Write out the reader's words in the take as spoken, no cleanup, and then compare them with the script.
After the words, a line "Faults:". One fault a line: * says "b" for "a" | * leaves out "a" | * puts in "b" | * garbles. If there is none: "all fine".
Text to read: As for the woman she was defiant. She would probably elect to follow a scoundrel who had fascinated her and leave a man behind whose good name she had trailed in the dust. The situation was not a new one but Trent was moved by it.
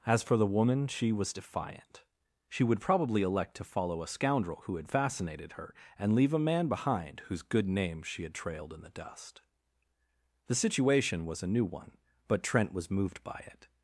As for the woman she was defiant. She would probably elect to follow a scoundrel who had fascinated her and leave a man behind whose good name she had trailed in the dust. The situation was a new one but Trent was moved by it.
Faults:
* leaves out "not"